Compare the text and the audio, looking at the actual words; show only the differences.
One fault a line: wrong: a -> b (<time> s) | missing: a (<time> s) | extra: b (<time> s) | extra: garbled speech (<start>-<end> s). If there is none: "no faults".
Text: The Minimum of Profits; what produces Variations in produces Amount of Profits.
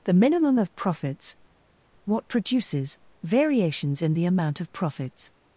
wrong: produces -> the (4.1 s)